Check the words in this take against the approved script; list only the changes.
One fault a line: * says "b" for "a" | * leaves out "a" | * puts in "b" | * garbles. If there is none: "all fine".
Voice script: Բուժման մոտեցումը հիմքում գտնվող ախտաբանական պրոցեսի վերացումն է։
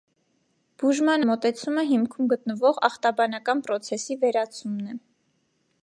all fine